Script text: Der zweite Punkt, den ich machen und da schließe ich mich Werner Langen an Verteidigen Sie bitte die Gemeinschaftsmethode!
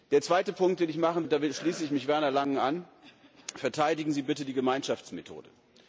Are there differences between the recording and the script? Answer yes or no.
no